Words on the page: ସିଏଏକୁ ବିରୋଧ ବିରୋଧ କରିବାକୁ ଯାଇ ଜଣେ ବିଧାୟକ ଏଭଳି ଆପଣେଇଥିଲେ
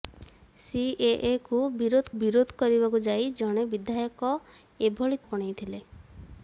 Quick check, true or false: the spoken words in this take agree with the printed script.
true